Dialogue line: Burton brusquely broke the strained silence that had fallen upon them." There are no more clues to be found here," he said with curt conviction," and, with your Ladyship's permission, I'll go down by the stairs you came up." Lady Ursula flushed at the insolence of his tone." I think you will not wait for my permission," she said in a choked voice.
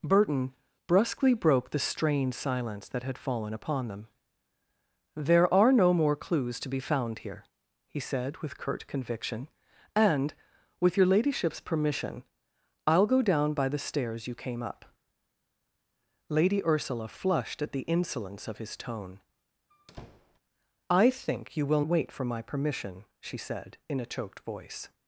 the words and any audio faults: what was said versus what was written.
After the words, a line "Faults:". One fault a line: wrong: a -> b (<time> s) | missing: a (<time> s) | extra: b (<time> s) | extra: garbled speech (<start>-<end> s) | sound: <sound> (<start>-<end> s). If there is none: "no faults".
Burton brusquely broke the strained silence that had fallen upon them." There are no more clues to be found here," he said with curt conviction," and, with your Ladyship's permission, I'll go down by the stairs you came up." Lady Ursula flushed at the insolence of his tone." I think you will wait for my permission," she said in a choked voice.
Faults:
sound: squeak (19.7-20.4 s)
missing: not (21.8 s)